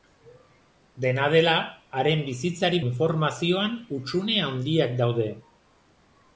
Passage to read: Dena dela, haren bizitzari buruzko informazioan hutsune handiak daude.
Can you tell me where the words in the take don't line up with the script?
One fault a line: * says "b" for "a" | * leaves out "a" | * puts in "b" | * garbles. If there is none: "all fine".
* leaves out "buruzko"